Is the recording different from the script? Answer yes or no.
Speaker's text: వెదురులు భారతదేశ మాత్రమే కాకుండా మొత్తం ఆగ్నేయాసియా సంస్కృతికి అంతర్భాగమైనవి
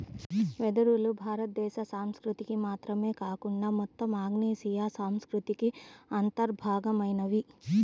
yes